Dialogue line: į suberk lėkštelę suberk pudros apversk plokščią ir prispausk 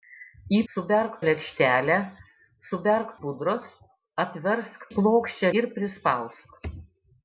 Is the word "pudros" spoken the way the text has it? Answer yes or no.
yes